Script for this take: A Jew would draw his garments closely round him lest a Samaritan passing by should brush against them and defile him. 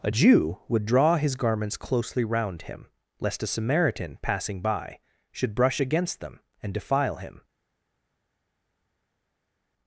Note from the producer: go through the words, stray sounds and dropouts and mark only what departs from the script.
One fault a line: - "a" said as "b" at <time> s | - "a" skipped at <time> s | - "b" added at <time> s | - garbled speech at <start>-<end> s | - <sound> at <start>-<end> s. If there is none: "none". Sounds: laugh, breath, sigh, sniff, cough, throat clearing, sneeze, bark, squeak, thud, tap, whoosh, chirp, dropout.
none